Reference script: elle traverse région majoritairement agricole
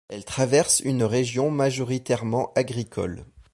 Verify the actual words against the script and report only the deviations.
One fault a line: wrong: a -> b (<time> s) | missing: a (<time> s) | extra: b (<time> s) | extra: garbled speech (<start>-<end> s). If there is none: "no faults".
extra: une (0.8 s)